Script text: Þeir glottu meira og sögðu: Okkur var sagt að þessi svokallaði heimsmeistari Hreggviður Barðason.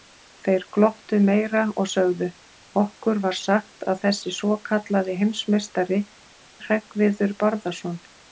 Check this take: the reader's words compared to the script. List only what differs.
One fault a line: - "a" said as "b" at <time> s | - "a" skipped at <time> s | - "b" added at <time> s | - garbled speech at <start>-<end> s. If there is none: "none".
none